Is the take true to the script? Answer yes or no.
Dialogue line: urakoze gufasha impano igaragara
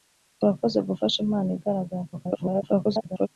no